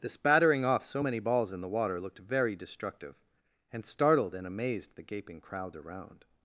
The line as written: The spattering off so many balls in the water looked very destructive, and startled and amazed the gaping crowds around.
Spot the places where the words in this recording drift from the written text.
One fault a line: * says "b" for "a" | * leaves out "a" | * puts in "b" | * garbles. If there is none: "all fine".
all fine